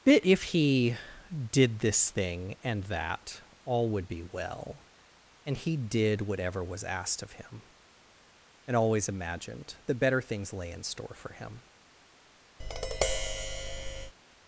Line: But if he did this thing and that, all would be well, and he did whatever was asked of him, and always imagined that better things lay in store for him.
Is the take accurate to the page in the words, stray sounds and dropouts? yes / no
no